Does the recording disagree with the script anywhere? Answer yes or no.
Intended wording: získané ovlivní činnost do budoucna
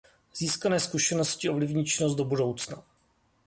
yes